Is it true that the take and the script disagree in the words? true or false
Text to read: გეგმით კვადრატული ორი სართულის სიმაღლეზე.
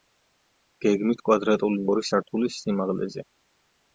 false